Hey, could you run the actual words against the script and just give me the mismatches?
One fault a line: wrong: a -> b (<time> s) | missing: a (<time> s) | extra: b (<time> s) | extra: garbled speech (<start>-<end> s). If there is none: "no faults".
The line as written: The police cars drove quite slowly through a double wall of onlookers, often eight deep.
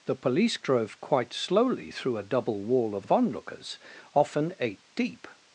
missing: cars (0.6 s)
extra: of (3.0 s)